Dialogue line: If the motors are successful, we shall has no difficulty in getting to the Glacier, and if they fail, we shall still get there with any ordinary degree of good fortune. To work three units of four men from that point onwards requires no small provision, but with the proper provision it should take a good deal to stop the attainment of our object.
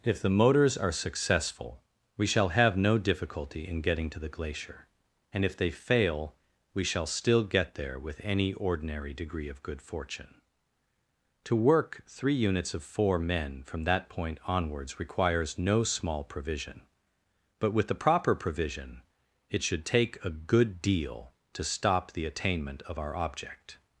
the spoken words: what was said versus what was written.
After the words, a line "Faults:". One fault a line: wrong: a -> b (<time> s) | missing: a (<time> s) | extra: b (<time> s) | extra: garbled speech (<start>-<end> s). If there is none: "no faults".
If the motors are successful, we shall have no difficulty in getting to the Glacier, and if they fail, we shall still get there with any ordinary degree of good fortune. To work three units of four men from that point onwards requires no small provision, but with the proper provision it should take a good deal to stop the attainment of our object.
Faults:
wrong: has -> have (2.5 s)